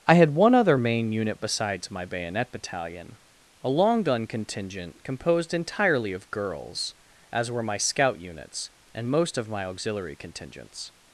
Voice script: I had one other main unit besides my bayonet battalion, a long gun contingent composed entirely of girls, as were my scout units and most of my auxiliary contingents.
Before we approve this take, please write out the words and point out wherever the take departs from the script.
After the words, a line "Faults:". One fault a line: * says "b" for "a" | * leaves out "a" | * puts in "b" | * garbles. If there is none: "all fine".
I had one other main unit besides my bayonet battalion, a long gun contingent composed entirely of girls, as were my scout units and most of my auxiliary contingents.
Faults:
all fine